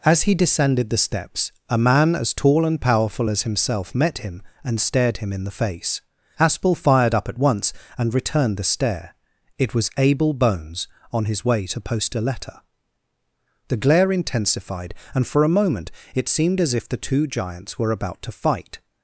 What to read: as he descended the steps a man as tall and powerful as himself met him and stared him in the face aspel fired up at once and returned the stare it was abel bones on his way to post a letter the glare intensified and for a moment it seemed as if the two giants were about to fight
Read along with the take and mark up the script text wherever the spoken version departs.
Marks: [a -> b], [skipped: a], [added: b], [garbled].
as he descended the steps a man as tall and powerful as himself met him and stared him in the face aspel fired up at once and returned the stare it was abel bones on his way to post a letter the glare intensified and for a moment it seemed as if the two giants were about to fight